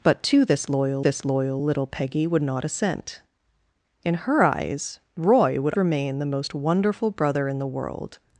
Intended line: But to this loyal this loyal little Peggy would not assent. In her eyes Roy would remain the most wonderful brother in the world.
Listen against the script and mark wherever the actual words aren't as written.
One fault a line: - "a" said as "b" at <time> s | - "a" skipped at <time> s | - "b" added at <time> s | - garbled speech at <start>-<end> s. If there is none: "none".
none